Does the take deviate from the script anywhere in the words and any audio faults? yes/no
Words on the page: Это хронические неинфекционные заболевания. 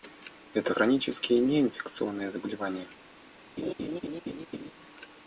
yes